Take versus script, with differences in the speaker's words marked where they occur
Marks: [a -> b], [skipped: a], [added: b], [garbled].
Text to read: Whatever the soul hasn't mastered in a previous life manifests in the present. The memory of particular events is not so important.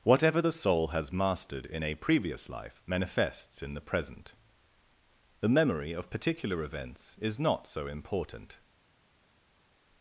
Whatever the soul [hasn't -> has] mastered in a previous life manifests in the present. The memory of particular events is not so important.